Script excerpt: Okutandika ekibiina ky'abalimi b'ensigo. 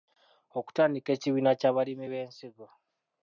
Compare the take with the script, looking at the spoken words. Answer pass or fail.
pass